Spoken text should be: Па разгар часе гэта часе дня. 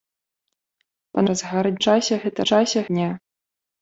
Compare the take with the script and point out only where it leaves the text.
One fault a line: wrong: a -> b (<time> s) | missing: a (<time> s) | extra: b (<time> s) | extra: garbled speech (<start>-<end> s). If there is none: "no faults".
no faults